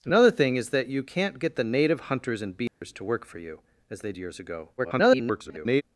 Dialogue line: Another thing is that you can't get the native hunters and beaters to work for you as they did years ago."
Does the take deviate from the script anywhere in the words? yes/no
yes